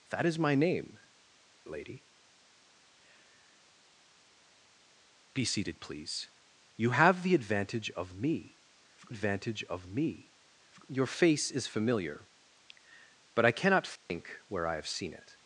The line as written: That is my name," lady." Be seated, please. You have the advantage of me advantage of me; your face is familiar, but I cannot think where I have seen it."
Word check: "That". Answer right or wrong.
right